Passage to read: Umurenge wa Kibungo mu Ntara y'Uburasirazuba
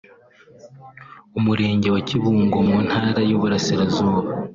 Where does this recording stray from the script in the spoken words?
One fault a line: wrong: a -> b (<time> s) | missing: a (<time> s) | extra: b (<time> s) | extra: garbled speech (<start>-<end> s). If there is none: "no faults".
no faults